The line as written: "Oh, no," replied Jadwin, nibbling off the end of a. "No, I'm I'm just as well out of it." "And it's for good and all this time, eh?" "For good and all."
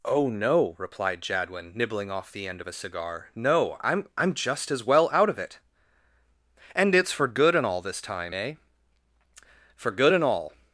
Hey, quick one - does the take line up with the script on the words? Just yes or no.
no